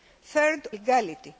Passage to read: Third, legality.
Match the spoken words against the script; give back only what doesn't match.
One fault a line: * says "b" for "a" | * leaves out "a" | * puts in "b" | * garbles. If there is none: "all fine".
all fine